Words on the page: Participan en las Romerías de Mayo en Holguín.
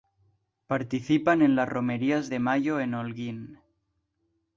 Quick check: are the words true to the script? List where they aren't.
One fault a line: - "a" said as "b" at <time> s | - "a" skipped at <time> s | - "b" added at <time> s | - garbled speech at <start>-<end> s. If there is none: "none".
none